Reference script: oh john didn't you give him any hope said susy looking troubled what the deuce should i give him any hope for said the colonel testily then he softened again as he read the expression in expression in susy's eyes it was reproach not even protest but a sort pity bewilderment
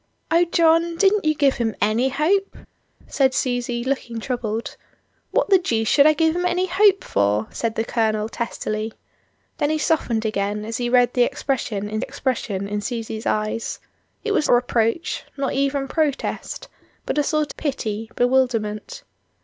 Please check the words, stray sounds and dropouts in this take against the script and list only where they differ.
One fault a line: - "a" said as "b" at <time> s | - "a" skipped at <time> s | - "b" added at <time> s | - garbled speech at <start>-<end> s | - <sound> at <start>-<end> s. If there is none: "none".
none